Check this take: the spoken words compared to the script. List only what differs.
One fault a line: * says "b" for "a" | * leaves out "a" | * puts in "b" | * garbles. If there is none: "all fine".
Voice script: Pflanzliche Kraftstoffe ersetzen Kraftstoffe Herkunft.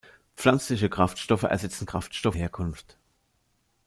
all fine